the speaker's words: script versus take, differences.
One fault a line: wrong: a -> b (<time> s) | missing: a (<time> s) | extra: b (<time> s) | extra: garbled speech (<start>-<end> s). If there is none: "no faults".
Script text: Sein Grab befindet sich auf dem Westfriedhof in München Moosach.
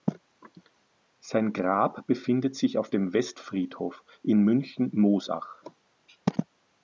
no faults